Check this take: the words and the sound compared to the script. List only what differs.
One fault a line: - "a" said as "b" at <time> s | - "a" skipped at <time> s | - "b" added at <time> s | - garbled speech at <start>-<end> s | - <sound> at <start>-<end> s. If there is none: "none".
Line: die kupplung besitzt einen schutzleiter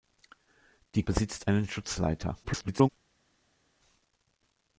- "kupplung" skipped at 1.0 s
- garbled speech at 2.4-2.9 s